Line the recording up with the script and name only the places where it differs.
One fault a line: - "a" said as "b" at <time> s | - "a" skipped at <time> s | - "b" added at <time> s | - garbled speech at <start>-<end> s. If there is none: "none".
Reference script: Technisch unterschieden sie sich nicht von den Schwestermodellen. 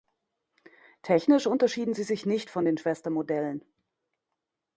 none